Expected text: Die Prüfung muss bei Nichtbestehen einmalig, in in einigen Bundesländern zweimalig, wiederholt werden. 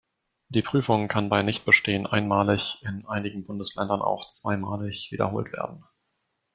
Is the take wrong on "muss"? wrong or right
wrong